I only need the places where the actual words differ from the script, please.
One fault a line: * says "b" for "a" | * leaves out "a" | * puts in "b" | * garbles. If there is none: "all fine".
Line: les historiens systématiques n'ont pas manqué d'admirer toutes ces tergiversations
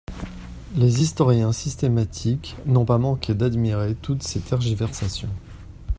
all fine